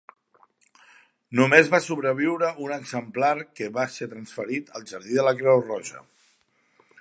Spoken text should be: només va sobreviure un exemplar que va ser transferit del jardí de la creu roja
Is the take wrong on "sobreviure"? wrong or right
right